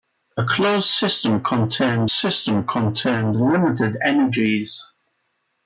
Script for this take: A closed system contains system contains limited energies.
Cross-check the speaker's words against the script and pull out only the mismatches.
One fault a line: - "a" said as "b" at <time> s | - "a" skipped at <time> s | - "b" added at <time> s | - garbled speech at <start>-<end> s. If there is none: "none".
none